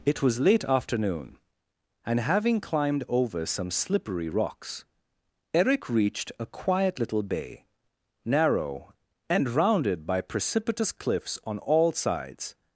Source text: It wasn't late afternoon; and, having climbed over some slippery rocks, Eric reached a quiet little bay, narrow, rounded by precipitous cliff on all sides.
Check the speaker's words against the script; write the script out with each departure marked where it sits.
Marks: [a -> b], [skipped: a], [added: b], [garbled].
It [wasn't -> was] late afternoon; and, having climbed over some slippery rocks, Eric reached a quiet little bay, narrow, [added: and] rounded by precipitous [cliff -> cliffs] on all sides.